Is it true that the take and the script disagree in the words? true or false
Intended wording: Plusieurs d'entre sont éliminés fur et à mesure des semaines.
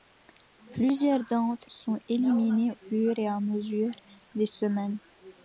false